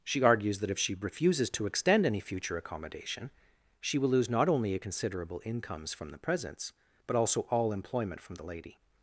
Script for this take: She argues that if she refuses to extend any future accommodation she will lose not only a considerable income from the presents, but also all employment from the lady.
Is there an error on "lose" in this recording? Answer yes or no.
no